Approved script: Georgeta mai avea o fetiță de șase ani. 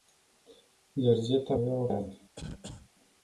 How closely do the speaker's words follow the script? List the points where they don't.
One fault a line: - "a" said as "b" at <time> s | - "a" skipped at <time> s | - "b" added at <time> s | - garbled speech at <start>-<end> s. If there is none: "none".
- "mai" skipped at 1.6 s
- "fetiță de șase" skipped at 1.9 s